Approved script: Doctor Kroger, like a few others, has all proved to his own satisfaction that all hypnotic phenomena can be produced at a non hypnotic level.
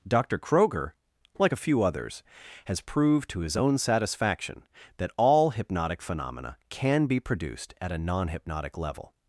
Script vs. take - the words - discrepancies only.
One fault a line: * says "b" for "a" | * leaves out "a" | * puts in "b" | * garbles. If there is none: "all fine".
* leaves out "all"